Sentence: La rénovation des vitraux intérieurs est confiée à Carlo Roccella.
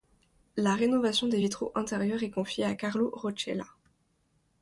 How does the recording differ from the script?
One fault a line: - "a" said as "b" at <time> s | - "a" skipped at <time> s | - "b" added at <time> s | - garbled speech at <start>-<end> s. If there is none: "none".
none